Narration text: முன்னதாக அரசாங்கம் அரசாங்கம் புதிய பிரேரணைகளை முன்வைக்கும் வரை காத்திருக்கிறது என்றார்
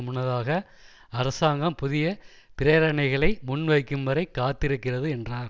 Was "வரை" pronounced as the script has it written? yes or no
yes